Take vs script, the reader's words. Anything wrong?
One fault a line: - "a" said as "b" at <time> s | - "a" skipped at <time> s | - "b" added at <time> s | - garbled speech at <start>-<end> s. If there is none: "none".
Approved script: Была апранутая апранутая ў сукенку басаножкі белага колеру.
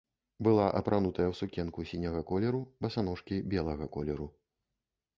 - "апранутая" skipped at 1.2 s
- "сіняга колеру" added at 1.9 s